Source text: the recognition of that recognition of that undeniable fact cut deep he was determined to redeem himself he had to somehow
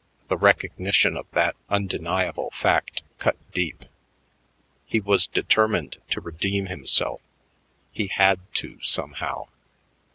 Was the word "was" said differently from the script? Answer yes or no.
no